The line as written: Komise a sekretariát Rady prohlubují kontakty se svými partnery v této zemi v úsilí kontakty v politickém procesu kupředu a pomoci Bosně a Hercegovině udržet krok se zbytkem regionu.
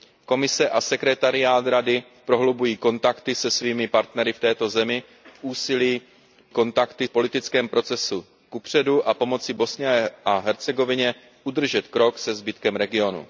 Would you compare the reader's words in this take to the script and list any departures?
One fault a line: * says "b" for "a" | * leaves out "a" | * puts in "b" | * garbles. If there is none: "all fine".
all fine